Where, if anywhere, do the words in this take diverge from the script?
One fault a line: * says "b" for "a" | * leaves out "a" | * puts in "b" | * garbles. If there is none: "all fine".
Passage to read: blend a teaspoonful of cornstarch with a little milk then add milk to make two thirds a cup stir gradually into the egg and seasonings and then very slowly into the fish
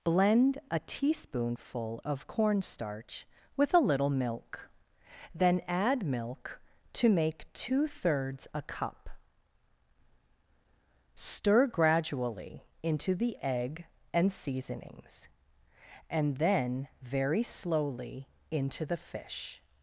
all fine